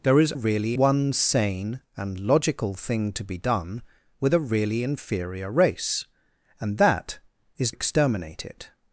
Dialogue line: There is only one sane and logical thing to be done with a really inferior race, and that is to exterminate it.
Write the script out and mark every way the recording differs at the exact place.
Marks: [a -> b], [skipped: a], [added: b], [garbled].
There is [only -> really] one sane and logical thing to be done with a really inferior race, and that is [skipped: to] exterminate it.